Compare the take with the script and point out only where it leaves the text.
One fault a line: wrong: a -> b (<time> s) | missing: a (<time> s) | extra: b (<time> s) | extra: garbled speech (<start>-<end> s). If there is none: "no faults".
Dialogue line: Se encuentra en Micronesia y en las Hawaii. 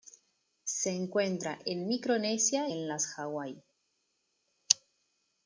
missing: y (2.7 s)